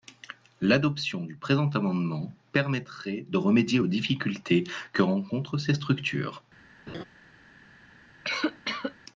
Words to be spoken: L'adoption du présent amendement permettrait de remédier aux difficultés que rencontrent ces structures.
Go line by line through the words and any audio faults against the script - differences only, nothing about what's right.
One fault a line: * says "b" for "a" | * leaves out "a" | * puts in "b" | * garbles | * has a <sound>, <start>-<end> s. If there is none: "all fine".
* has a laugh, 6.9-7.0 s
* has a cough, 8.2-9.0 s